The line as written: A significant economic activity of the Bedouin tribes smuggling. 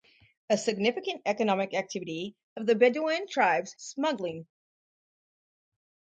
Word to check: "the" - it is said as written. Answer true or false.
true